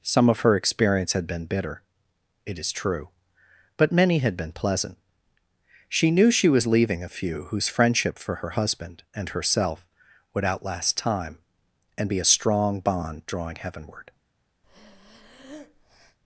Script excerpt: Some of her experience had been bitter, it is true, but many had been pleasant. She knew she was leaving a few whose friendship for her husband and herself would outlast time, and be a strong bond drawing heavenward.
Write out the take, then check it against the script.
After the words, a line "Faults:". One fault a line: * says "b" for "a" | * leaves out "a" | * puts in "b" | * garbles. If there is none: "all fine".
Some of her experience had been bitter, it is true, but many had been pleasant. She knew she was leaving a few whose friendship for her husband and herself would outlast time, and be a strong bond drawing heavenward.
Faults:
all fine